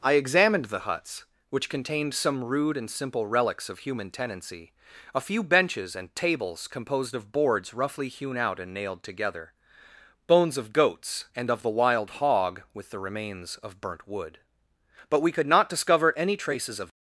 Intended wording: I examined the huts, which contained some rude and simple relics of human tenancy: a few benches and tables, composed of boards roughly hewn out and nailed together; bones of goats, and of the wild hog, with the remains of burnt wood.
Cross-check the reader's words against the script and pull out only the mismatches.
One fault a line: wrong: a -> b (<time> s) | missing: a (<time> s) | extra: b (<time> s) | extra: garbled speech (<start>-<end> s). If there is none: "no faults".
extra: But we could not discover any traces of (15.1 s)